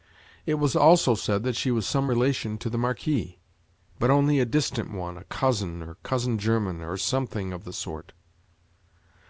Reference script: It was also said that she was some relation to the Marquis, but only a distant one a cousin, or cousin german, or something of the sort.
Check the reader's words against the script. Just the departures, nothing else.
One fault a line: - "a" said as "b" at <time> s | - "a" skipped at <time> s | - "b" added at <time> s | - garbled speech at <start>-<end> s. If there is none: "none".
none